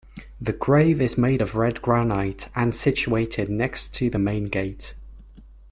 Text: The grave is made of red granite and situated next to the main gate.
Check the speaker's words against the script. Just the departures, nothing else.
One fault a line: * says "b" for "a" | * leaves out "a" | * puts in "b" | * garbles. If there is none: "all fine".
all fine